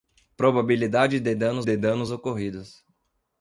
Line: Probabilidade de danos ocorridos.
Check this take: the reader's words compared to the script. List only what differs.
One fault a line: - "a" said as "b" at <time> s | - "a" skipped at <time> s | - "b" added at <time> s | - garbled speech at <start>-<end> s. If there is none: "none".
- "de danos" added at 1.6 s